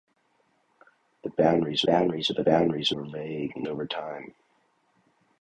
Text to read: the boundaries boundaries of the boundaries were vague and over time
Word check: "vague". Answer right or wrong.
right